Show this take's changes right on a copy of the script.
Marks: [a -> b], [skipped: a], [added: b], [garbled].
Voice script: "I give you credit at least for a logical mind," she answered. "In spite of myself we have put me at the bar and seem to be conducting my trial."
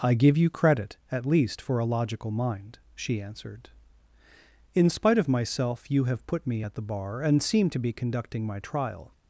"I give you credit at least for a logical mind," she answered. "In spite of myself [we -> you] have put me at the bar and seem to be conducting my trial."